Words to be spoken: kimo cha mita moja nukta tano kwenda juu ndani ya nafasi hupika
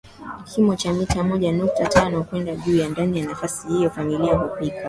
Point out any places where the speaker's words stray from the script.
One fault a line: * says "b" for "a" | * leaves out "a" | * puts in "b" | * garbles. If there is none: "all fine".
* puts in "hiyo familia"